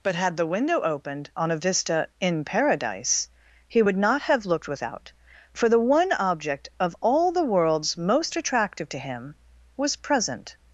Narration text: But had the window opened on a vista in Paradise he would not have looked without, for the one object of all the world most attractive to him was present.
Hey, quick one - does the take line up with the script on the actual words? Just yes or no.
no